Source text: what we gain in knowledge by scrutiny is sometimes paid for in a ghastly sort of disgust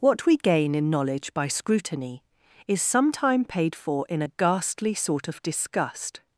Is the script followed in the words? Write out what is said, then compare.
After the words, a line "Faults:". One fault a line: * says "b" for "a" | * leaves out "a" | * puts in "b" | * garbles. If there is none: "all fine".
what we gain in knowledge by scrutiny is sometime paid for in a ghastly sort of disgust
Faults:
* says "sometime" for "sometimes"